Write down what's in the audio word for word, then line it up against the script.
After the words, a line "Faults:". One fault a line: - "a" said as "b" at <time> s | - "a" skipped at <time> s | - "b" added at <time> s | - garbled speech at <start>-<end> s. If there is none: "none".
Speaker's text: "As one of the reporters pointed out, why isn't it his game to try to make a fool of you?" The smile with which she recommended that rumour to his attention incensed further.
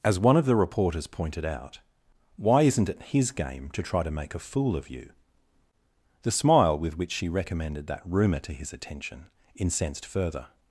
"As one of the reporters pointed out, why isn't it his game to try to make a fool of you?" The smile with which she recommended that rumour to his attention incensed further.
Faults:
none